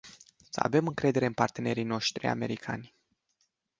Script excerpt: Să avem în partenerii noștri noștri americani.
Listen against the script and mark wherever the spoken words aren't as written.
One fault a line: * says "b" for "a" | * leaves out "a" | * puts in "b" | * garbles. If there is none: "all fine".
* puts in "încredere"
* leaves out "noștri"